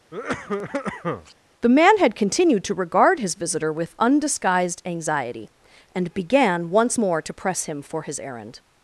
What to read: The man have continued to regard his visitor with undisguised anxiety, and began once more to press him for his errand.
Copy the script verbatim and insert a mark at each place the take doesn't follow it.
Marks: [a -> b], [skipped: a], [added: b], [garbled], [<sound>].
[cough] The man [have -> had] continued to regard his visitor with undisguised anxiety, and began once more to press him for his errand.